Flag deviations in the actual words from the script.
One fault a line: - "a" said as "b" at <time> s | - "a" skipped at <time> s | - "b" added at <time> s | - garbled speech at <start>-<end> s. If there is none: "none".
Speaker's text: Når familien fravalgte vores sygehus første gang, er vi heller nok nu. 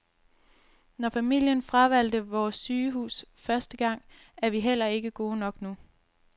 - "ikke gode" added at 4.8 s